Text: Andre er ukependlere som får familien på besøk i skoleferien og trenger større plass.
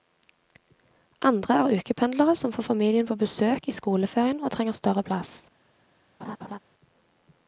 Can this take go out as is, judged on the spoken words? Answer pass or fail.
pass